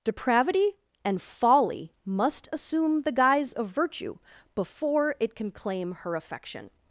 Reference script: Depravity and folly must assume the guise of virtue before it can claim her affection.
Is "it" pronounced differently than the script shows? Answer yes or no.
no